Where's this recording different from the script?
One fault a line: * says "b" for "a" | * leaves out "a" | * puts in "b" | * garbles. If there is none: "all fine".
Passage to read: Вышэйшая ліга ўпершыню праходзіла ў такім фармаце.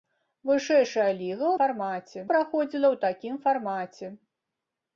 * says "фармаце" for "ўпершыню"